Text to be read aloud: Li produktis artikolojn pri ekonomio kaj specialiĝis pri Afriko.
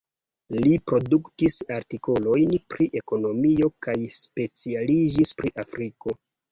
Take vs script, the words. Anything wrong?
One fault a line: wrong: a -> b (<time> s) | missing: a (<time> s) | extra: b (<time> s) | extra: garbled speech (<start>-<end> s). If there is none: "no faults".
no faults